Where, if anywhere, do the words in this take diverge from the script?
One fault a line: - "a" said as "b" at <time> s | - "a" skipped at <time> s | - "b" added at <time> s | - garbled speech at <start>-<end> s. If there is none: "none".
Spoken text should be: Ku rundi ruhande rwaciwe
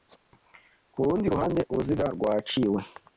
- "uruziga" added at 1.7 s